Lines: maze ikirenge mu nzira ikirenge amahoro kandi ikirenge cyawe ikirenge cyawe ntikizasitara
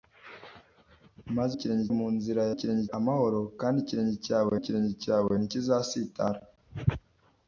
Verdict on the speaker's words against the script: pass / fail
pass